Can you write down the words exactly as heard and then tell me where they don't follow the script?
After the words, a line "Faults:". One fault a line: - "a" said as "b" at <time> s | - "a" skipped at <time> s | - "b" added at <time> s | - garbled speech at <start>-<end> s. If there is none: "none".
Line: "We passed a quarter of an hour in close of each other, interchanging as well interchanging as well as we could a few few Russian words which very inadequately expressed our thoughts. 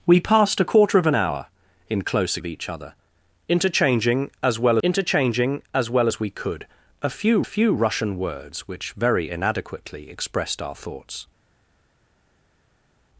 "We passed a quarter of an hour in close of each other, interchanging as well interchanging as well as we could a few few Russian words which very inadequately expressed our thoughts.
Faults:
none